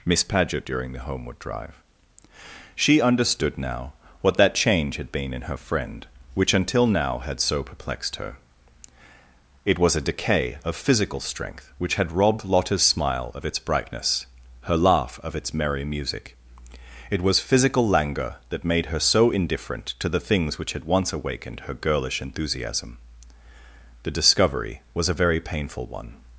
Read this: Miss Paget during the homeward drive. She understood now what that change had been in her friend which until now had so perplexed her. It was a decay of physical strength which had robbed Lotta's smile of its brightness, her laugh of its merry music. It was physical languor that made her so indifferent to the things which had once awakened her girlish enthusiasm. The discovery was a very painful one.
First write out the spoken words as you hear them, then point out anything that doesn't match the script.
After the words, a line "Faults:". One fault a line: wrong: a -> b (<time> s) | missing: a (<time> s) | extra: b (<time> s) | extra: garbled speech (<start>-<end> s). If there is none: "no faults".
Miss Paget during the homeward drive. She understood now what that change had been in her friend which until now had so perplexed her. It was a decay of physical strength which had robbed Lotta's smile of its brightness, her laugh of its merry music. It was physical languor that made her so indifferent to the things which had once awakened her girlish enthusiasm. The discovery was a very painful one.
Faults:
no faults